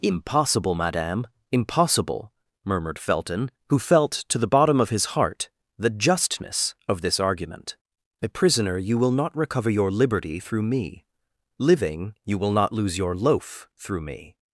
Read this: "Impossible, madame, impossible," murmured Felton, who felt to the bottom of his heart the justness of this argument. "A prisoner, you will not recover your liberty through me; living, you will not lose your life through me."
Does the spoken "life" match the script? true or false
false